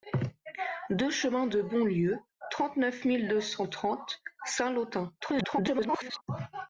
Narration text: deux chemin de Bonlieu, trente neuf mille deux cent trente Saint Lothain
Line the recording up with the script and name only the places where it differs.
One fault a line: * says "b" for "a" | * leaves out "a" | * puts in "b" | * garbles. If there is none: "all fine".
* garbles